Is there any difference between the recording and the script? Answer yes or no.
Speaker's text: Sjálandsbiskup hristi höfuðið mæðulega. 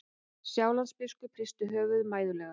no